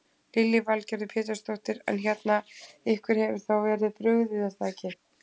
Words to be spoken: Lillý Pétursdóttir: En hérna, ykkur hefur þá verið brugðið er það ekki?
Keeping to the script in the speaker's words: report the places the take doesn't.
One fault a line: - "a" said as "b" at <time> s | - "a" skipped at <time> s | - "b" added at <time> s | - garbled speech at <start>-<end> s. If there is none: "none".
- "Valgerður" added at 0.7 s